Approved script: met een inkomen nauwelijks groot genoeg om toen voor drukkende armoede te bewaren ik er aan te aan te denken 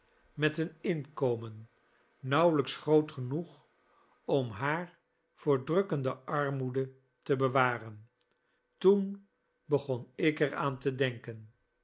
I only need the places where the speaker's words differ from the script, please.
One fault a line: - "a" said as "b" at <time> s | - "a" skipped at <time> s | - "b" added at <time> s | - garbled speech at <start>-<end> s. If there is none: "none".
- "toen" said as "haar" at 4.5 s
- "toen begon" added at 8.8 s
- "aan te" skipped at 10.9 s